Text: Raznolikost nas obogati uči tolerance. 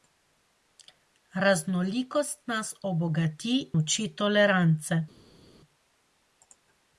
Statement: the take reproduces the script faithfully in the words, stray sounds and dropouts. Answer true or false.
true